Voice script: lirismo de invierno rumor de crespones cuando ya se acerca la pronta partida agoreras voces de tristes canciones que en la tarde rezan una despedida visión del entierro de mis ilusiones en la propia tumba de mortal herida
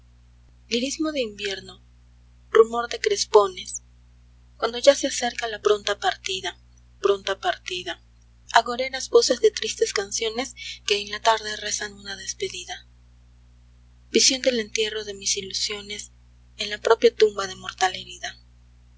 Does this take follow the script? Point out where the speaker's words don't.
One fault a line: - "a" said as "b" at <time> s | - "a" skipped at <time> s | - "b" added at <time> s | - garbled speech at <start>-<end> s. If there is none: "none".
- "pronta partida" added at 7.0 s